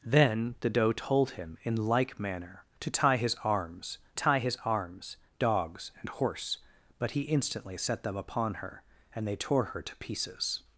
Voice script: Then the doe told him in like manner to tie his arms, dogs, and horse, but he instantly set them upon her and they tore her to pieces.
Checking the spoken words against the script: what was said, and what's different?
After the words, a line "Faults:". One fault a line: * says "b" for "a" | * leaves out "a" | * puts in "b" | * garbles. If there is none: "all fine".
Then the doe told him in like manner to tie his arms tie his arms, dogs, and horse, but he instantly set them upon her and they tore her to pieces.
Faults:
* puts in "tie his arms"